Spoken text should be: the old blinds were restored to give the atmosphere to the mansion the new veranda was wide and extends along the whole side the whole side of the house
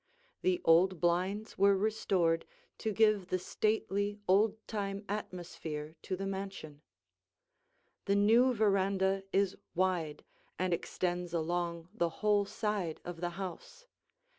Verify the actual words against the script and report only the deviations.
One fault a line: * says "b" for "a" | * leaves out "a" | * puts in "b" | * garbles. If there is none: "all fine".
* puts in "stately old time"
* says "is" for "was"
* leaves out "the whole side"